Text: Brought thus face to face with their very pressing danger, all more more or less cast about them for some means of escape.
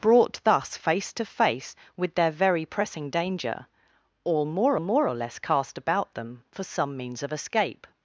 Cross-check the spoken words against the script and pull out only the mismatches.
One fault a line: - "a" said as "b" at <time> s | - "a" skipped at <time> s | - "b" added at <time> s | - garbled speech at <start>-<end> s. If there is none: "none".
none